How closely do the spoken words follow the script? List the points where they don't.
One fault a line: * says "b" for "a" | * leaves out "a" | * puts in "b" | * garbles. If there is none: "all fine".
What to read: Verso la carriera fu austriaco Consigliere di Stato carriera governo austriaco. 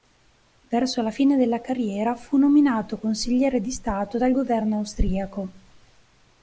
* puts in "fine della"
* says "nominato" for "austriaco"
* says "dal" for "carriera"